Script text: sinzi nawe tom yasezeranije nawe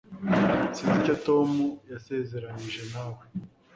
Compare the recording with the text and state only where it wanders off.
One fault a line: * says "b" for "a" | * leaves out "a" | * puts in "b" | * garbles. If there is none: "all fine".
* says "icyo" for "nawe"